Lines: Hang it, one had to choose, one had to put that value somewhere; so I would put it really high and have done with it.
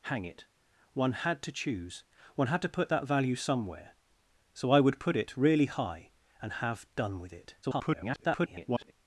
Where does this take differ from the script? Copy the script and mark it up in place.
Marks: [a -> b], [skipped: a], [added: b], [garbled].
Hang it, one had to choose, one had to put that value somewhere; so I would put it really high and have done with it. [garbled]